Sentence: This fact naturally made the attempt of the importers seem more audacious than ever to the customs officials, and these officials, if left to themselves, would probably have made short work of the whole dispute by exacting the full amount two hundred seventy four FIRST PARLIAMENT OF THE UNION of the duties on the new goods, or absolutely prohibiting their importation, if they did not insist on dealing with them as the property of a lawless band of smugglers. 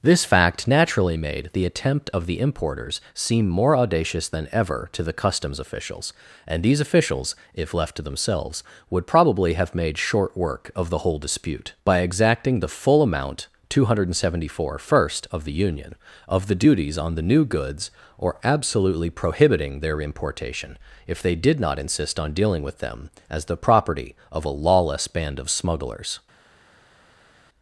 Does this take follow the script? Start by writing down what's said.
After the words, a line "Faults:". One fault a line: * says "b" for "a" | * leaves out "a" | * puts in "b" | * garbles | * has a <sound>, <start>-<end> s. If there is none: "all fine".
This fact naturally made the attempt of the importers seem more audacious than ever to the customs officials, and these officials, if left to themselves, would probably have made short work of the whole dispute by exacting the full amount two hundred seventy four FIRST OF THE UNION of the duties on the new goods, or absolutely prohibiting their importation, if they did not insist on dealing with them as the property of a lawless band of smugglers.
Faults:
* leaves out "PARLIAMENT"